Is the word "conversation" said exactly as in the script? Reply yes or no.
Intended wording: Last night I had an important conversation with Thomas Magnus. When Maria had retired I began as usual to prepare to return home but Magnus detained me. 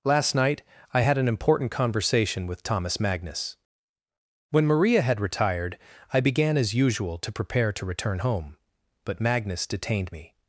yes